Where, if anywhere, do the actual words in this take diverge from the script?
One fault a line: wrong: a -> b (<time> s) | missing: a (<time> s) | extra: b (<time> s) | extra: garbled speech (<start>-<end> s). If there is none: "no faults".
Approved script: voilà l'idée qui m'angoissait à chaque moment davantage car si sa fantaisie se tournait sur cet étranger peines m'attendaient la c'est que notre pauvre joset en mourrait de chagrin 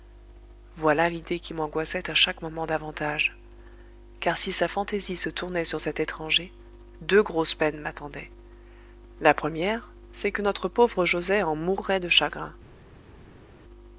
extra: deux grosses (7.0 s)
extra: première (9.3 s)